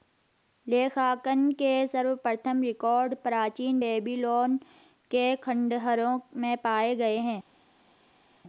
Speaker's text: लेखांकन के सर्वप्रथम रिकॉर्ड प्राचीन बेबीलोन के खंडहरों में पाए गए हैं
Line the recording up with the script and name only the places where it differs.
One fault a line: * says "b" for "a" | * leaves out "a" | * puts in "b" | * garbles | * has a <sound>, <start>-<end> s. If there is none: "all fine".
all fine